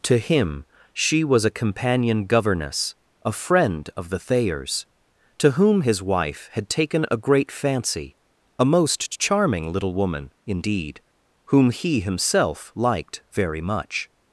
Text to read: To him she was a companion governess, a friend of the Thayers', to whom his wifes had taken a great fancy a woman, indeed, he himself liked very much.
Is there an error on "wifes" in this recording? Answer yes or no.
yes